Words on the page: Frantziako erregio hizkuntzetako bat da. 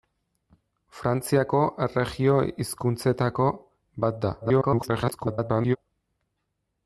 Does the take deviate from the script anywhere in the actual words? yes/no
yes